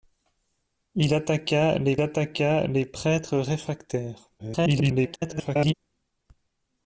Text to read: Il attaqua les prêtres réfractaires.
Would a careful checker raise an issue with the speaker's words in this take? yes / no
yes